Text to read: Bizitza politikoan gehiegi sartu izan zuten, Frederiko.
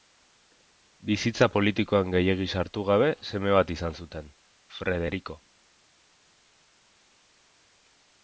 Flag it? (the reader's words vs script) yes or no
yes